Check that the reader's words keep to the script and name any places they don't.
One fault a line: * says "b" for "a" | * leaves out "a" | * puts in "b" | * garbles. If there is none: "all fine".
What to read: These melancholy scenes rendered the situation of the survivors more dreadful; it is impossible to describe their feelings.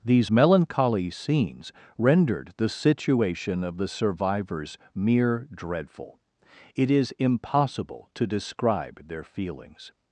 * says "mere" for "more"